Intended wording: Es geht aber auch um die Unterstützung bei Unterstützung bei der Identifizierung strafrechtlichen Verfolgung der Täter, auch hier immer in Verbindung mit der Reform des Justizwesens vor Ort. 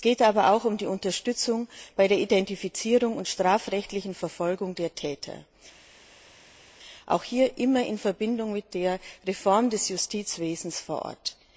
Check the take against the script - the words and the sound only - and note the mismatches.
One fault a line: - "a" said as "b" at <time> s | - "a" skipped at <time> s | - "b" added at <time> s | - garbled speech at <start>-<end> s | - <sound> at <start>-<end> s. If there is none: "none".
- "Unterstützung bei" skipped at 2.1 s
- "und" added at 3.2 s